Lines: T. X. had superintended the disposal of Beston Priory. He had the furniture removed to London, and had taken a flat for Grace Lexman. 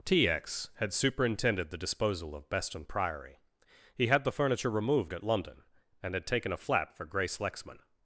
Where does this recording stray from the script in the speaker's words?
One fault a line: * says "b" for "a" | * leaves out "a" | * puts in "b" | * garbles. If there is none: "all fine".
* says "at" for "to"